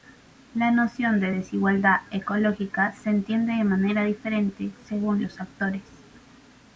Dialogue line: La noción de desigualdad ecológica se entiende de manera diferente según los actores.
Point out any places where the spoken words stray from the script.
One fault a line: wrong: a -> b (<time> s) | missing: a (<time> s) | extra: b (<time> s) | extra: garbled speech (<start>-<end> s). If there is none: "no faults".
no faults